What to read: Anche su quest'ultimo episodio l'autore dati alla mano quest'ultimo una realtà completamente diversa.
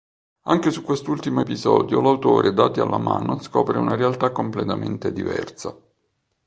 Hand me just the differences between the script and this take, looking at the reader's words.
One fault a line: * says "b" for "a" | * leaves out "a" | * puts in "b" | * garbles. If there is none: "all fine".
* says "scopre" for "quest'ultimo"